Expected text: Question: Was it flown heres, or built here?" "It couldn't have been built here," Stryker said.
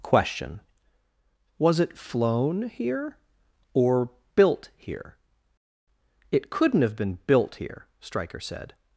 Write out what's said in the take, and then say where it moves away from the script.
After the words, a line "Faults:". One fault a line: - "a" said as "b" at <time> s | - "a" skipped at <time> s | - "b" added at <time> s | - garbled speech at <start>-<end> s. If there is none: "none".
Question: Was it flown here, or built here?" "It couldn't have been built here," Stryker said.
Faults:
- "heres" said as "here" at 2.7 s